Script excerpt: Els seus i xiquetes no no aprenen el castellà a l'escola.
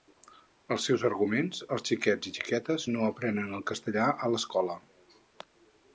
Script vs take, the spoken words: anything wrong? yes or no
yes